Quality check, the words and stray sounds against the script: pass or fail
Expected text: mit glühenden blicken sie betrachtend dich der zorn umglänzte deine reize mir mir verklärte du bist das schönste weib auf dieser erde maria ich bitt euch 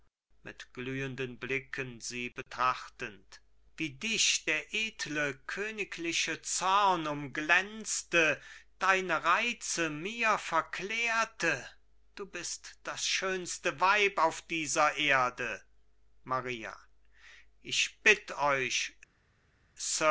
fail